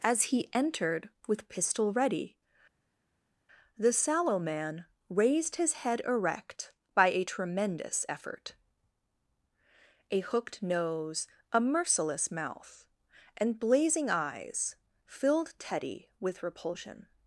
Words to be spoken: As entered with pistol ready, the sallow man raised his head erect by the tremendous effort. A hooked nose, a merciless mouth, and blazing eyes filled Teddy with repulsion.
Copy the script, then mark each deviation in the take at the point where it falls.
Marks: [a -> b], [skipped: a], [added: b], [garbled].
As [added: he] entered with pistol ready, the sallow man raised his head erect by [the -> a] tremendous effort. A hooked nose, a merciless mouth, and blazing eyes filled Teddy with repulsion.